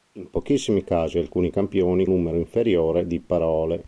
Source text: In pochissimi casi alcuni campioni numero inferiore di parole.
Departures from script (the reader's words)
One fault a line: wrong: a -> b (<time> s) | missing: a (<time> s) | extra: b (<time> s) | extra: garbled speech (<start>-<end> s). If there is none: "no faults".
no faults